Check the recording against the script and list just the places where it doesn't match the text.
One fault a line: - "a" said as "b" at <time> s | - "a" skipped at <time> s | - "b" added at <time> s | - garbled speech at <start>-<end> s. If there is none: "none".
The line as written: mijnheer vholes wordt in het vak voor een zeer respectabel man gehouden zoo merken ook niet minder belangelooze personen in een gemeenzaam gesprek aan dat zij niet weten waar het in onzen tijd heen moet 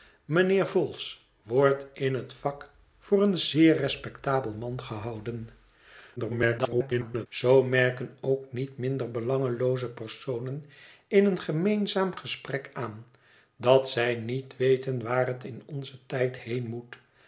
- garbled speech at 6.2-7.3 s